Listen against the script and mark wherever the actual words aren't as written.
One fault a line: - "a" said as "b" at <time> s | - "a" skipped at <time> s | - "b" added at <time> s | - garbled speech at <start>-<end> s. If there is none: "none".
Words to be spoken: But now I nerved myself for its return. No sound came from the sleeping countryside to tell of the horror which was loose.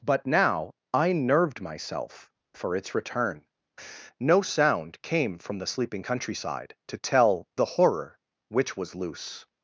- "of" skipped at 7.5 s